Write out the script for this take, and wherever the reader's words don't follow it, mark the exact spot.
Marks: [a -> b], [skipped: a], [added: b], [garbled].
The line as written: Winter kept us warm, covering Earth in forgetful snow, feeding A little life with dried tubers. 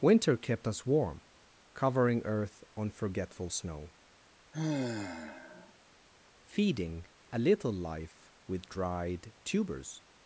Winter kept us warm, covering Earth [in -> on] forgetful snow, feeding A little life with dried tubers.